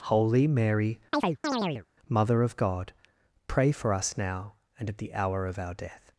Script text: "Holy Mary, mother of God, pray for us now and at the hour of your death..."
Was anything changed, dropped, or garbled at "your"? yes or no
yes